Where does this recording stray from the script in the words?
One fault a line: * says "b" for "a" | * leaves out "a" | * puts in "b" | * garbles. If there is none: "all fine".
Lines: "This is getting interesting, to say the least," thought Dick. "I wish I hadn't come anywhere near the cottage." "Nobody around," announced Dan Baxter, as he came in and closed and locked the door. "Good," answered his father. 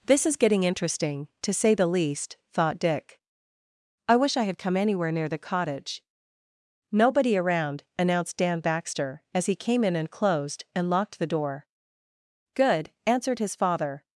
* says "had" for "hadn't"